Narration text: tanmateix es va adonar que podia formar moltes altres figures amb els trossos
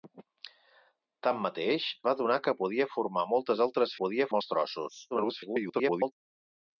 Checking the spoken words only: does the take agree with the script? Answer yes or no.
no